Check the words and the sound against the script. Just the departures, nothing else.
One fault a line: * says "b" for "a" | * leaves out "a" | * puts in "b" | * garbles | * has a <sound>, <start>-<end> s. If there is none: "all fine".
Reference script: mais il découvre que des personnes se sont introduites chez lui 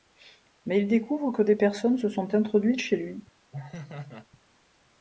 * has a laugh, 3.5-4.3 s